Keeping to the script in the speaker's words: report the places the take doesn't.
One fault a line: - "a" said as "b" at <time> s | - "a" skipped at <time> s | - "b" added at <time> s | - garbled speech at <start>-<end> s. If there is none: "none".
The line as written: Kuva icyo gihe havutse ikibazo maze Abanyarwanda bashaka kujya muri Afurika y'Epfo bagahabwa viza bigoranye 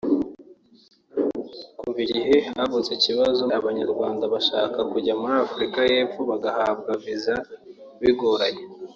- "icyo" skipped at 2.0 s
- "maze" skipped at 3.4 s